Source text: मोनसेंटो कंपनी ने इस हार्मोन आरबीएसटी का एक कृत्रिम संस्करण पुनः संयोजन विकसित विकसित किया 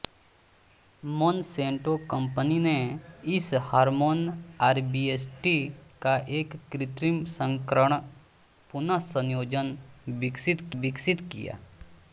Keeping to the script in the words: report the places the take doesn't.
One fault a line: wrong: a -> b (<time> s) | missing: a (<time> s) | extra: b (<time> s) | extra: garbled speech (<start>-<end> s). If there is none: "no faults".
no faults